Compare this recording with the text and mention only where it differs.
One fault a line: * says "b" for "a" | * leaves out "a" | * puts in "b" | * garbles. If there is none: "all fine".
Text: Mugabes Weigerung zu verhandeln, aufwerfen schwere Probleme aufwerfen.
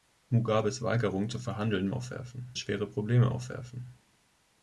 all fine